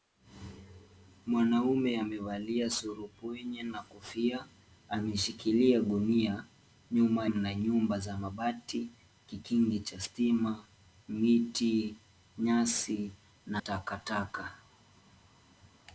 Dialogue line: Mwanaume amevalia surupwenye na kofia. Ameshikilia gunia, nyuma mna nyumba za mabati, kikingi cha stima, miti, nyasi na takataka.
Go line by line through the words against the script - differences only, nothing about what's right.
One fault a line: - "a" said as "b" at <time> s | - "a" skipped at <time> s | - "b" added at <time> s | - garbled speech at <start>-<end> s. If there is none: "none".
none